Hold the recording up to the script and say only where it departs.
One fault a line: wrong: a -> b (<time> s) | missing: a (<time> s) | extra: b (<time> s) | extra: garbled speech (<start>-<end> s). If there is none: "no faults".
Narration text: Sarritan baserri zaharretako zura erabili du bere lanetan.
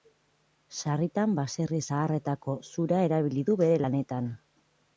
no faults